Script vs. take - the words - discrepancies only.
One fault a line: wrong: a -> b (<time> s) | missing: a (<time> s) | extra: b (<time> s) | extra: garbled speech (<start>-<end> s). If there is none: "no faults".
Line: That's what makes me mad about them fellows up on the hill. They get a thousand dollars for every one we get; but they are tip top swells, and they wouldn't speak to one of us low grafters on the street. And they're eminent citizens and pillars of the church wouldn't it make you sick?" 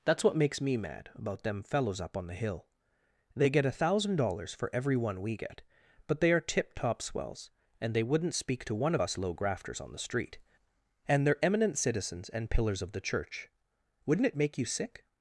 no faults